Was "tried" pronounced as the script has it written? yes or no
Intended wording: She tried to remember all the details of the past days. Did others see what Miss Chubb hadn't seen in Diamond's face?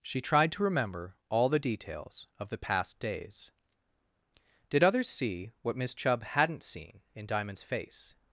yes